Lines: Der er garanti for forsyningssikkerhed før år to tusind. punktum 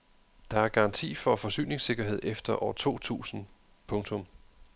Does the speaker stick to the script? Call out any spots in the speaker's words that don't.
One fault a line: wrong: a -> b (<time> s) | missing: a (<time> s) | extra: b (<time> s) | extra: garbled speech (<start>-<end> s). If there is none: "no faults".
wrong: før -> efter (2.2 s)